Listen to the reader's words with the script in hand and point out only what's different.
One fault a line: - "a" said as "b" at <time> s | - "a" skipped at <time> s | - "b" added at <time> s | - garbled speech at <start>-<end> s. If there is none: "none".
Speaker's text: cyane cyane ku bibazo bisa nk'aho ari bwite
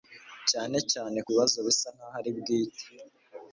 none